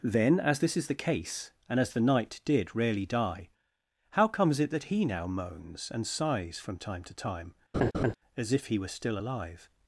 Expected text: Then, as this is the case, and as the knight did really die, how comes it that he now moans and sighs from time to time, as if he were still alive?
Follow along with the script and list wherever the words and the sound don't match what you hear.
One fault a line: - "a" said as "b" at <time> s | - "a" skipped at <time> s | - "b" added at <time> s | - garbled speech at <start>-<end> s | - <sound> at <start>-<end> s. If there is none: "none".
- "really" said as "rarely" at 2.8 s
- laugh at 7.7-8.1 s